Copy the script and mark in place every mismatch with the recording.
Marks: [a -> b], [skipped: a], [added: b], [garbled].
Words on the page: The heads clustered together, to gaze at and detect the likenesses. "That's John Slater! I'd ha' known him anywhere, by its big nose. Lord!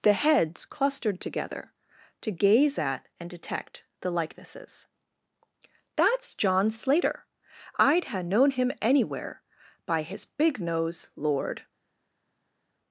The heads clustered together, to gaze at and detect the likenesses. "That's John Slater! I'd ha' known him anywhere, by [its -> his] big nose. Lord!